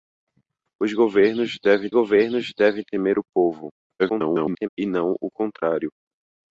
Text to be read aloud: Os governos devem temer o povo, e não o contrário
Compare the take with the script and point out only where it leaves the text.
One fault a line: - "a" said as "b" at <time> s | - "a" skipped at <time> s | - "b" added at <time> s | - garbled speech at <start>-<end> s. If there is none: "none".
- "governos devem" added at 1.9 s
- garbled speech at 4.0-4.7 s